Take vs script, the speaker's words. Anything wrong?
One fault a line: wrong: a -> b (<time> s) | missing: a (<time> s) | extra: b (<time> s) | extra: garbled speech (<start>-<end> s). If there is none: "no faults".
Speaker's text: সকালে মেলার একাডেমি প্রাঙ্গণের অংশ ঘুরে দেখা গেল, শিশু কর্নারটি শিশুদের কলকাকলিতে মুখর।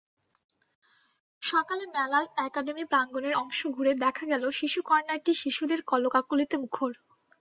no faults